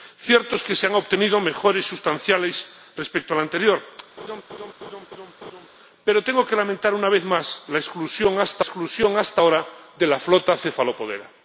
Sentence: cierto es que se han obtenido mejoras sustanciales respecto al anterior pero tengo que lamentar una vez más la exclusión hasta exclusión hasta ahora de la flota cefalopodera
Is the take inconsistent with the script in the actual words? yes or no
no